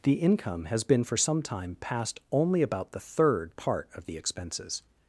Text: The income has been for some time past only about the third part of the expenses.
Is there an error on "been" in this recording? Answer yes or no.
no